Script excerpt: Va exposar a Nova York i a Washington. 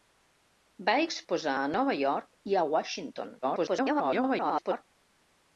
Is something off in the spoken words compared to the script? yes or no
yes